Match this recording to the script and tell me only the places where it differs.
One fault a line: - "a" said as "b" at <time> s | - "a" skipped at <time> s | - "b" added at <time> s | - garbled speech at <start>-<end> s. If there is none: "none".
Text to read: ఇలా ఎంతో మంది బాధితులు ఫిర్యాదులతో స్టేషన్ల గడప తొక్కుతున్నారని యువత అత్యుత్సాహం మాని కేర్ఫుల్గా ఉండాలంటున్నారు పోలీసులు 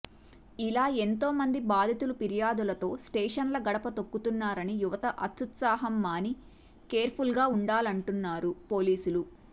none